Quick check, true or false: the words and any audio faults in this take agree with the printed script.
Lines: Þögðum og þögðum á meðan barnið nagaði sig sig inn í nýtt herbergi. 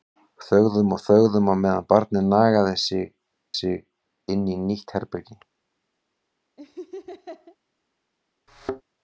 false